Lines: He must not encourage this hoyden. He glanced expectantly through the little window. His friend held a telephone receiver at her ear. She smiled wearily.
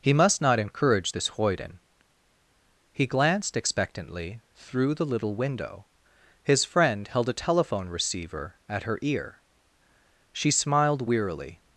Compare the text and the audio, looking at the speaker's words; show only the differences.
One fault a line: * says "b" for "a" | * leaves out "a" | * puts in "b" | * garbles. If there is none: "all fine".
all fine